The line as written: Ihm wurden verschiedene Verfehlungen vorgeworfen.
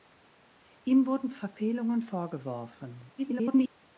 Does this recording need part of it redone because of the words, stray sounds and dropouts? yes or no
yes